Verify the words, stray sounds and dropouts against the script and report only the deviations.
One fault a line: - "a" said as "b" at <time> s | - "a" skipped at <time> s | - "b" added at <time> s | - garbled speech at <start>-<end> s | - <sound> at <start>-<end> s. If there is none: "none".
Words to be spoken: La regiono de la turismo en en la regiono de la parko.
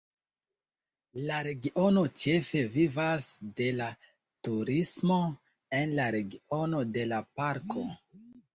- "ĉefe vivas" added at 2.2 s
- "en" skipped at 6.0 s